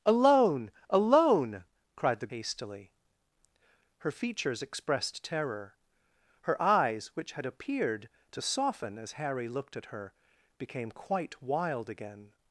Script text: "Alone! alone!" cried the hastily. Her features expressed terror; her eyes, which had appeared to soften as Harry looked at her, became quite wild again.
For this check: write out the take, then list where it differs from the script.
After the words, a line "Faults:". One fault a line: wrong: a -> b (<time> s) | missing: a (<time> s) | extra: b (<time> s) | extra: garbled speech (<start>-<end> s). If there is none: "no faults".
"Alone! alone!" cried the hastily. Her features expressed terror; her eyes, which had appeared to soften as Harry looked at her, became quite wild again.
Faults:
no faults